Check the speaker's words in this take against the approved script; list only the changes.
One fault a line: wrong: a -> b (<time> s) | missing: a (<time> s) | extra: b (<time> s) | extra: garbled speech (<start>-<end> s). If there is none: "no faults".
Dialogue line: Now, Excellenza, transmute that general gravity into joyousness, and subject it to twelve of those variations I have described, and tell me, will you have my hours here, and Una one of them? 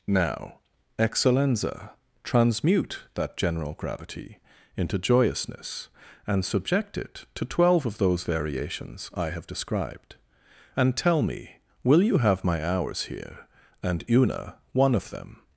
no faults